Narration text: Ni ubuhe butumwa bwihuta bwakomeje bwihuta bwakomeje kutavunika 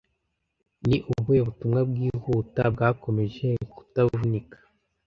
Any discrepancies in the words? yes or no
yes